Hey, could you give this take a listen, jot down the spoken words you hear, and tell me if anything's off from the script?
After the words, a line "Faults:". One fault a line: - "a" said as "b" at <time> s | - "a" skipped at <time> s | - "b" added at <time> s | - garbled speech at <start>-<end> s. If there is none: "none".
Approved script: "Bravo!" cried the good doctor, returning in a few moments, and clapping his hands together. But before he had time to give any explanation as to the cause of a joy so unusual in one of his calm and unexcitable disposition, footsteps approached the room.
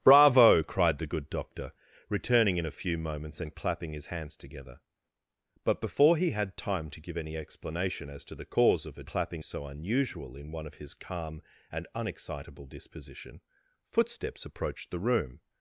"Bravo!" cried the good doctor, returning in a few moments, and clapping his hands together. But before he had time to give any explanation as to the cause of a clapping so unusual in one of his calm and unexcitable disposition, footsteps approached the room.
Faults:
- "joy" said as "clapping" at 9.0 s